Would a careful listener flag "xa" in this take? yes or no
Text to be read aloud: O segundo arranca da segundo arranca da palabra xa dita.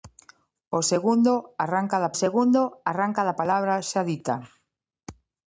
no